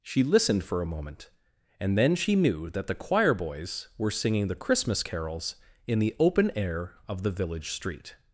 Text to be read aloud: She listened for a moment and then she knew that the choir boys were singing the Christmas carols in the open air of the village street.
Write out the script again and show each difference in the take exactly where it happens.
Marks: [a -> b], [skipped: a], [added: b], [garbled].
She listened for a moment and then she knew that the choir boys were singing the Christmas carols in the open air of the village street.